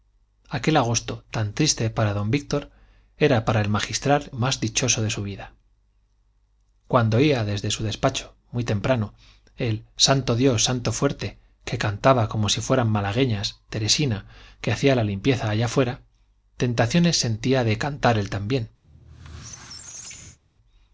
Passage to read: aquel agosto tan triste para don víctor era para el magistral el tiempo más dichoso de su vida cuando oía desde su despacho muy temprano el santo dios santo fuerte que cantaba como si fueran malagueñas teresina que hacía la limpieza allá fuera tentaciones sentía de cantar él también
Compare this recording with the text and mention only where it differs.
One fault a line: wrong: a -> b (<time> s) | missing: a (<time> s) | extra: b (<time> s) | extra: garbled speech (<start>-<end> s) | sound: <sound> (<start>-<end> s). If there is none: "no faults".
missing: el tiempo (4.3 s)
sound: squeak (18.8-20.4 s)